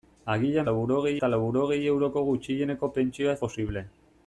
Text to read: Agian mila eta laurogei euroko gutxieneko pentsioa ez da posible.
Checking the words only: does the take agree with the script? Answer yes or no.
no